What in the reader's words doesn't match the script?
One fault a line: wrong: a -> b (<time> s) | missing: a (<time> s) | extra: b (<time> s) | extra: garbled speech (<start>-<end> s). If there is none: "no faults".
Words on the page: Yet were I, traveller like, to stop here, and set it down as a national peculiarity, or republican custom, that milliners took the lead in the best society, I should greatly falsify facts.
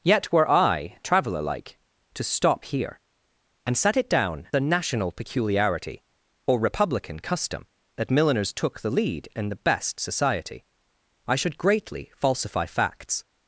missing: as (4.5 s)